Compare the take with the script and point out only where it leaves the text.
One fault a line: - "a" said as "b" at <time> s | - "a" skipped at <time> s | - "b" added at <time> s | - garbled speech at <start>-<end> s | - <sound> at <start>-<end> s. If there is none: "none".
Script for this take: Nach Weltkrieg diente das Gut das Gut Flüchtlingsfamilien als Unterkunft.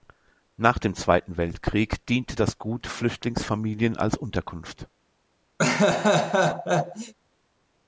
- "dem Zweiten" added at 0.8 s
- "das Gut" skipped at 2.9 s
- laugh at 5.6-7.1 s